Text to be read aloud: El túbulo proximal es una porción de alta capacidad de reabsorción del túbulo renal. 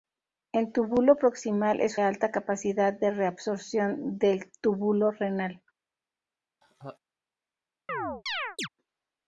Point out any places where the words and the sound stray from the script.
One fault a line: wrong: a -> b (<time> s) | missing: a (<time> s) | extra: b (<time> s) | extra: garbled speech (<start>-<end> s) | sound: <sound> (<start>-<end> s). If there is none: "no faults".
missing: una porción de (2.0 s)
sound: laugh (6.6-7.0 s)
sound: chirp (7.9-8.7 s)